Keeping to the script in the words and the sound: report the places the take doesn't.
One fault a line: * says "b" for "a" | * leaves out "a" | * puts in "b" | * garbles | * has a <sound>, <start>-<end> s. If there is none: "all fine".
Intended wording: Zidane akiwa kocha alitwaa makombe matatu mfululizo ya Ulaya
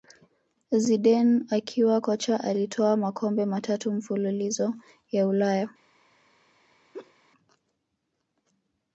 * has a laugh, 6.9-7.1 s